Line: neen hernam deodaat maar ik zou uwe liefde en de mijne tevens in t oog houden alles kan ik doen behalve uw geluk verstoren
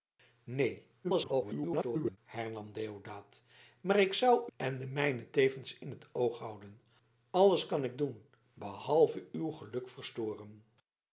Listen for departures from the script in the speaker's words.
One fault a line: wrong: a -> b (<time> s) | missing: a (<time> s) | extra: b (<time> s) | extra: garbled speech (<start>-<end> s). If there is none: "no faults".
extra: garbled speech (1.0-2.2 s)
missing: uwe liefde (4.5 s)